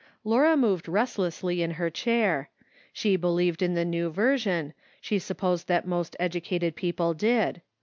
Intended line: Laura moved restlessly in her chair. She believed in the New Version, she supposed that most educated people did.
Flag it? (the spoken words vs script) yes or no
no